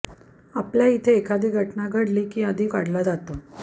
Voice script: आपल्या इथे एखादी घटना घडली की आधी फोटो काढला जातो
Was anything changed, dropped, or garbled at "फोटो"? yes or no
yes